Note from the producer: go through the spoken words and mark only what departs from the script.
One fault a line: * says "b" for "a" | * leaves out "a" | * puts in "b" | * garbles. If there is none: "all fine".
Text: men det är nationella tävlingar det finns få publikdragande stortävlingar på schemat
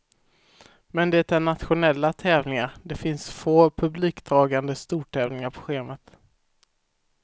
all fine